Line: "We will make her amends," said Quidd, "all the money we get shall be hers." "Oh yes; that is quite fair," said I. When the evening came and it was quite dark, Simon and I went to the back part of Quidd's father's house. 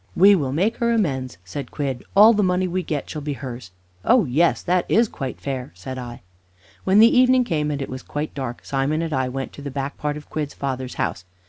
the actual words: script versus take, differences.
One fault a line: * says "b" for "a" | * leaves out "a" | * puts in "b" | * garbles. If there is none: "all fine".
all fine